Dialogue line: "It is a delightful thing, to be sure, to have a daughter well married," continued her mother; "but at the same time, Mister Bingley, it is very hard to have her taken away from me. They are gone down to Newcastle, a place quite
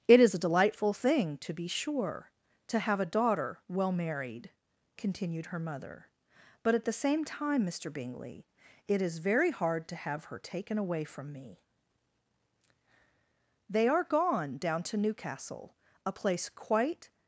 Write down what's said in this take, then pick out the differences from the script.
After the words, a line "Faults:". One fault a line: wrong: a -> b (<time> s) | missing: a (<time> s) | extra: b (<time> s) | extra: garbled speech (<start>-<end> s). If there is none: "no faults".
"It is a delightful thing, to be sure, to have a daughter well married," continued her mother; "but at the same time, Mister Bingley, it is very hard to have her taken away from me. They are gone down to Newcastle, a place quite
Faults:
no faults